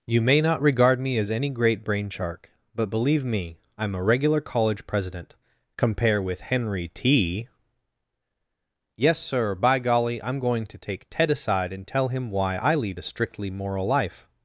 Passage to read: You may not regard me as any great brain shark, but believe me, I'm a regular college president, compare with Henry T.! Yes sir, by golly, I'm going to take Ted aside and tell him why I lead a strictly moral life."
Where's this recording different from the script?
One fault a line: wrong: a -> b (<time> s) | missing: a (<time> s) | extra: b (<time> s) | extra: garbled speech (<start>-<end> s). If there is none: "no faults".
no faults